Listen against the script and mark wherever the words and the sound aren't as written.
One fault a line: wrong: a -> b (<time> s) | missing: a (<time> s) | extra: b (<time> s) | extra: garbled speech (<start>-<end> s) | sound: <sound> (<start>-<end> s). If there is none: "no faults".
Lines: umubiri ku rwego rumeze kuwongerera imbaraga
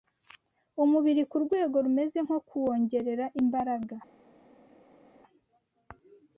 extra: nko (2.2 s)